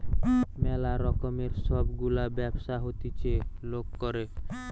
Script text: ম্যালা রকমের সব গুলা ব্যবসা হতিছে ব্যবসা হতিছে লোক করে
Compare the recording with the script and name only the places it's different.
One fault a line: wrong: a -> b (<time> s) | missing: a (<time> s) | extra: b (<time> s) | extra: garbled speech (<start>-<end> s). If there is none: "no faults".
missing: ব্যবসা হতিছে (3.3 s)